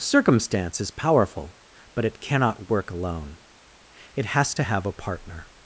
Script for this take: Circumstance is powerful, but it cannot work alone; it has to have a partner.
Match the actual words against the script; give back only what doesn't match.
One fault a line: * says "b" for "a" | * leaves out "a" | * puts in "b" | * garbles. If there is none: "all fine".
all fine